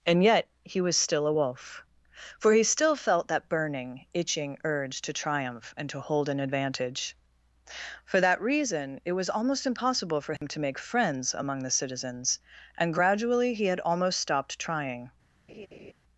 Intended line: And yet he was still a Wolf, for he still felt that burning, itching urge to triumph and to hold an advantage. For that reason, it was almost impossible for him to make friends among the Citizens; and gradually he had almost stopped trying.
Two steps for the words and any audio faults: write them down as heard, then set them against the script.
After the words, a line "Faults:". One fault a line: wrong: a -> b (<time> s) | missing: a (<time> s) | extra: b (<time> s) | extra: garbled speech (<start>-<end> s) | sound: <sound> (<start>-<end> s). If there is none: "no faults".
And yet he was still a Wolf, for he still felt that burning, itching urge to triumph and to hold an advantage. For that reason, it was almost impossible for him to make friends among the Citizens; and gradually he had almost stopped trying.
Faults:
sound: dropout (10.4-10.4 s)
sound: laugh (15.5-15.9 s)